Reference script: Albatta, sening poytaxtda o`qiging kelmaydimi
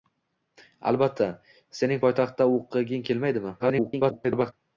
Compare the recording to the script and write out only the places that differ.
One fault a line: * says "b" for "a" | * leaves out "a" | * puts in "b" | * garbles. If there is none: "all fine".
* garbles